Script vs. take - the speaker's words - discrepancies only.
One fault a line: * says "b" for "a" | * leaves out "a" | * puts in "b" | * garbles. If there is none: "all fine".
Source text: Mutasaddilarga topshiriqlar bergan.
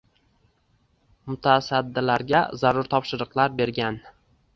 * puts in "zarur"